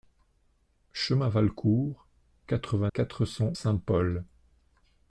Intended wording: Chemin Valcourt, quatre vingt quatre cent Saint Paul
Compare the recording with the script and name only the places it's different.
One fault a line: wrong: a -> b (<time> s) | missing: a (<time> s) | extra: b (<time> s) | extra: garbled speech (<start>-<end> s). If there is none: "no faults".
no faults